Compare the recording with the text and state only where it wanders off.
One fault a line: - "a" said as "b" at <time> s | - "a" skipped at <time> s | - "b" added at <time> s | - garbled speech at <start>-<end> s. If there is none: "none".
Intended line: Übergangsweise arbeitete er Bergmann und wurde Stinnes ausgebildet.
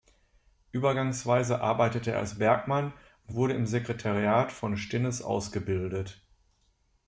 - "als" added at 2.2 s
- "im Sekretariat von" added at 3.5 s